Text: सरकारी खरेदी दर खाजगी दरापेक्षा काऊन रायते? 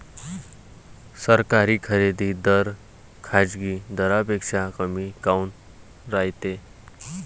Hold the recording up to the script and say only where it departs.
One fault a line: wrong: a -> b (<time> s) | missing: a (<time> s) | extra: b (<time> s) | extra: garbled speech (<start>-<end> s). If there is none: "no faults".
extra: कमी (4.8 s)